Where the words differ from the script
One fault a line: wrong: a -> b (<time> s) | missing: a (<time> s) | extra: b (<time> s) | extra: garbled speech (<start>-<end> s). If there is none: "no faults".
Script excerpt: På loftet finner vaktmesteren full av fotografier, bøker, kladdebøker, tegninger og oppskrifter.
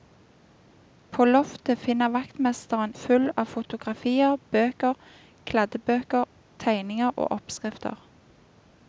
no faults